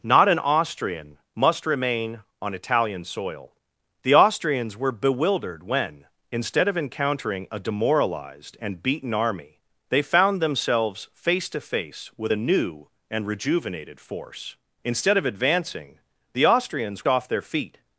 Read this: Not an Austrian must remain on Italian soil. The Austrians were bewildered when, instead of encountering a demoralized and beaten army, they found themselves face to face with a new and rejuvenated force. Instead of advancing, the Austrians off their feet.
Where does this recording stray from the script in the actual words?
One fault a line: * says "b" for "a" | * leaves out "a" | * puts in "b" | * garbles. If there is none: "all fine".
all fine